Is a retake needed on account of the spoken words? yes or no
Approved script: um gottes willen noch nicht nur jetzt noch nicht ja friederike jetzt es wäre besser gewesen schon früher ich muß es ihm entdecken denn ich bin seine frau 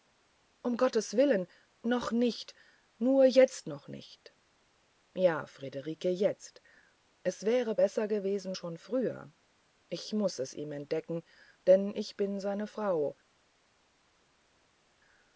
no